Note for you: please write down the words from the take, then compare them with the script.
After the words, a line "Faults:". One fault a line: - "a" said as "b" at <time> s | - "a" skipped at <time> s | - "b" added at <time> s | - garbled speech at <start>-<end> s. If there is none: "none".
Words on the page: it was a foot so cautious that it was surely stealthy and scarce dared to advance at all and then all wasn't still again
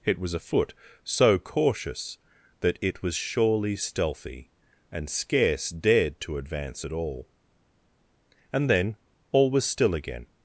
it was a foot so cautious that it was surely stealthy and scarce dared to advance at all and then all was still again
Faults:
- "wasn't" said as "was" at 9.5 s